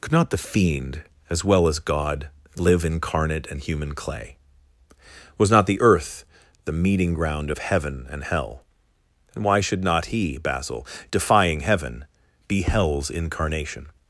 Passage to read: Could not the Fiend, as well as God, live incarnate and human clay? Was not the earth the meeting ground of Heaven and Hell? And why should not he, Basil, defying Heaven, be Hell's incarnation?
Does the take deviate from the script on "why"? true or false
false